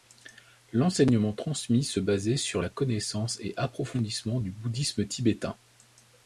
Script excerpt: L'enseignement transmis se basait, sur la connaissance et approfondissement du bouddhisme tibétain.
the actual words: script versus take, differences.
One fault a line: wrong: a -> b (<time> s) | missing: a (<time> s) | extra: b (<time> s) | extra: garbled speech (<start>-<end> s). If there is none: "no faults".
no faults